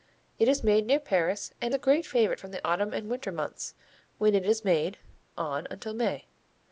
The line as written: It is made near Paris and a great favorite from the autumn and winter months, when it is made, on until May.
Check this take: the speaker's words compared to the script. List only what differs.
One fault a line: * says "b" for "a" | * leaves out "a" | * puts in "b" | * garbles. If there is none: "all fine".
all fine